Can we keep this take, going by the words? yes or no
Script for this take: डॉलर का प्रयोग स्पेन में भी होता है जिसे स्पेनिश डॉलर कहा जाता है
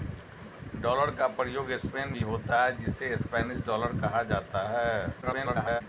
no